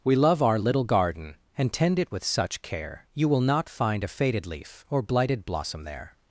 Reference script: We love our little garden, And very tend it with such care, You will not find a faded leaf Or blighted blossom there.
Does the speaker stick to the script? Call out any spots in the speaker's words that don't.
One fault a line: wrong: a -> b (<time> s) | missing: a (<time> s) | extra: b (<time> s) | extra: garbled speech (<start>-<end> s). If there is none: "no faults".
missing: very (1.7 s)